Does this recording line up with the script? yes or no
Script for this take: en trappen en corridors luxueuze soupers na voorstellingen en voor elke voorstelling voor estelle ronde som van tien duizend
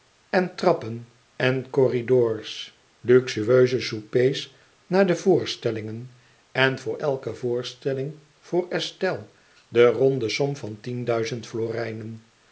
no